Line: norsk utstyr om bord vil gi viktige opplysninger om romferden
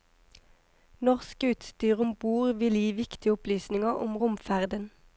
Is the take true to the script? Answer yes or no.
yes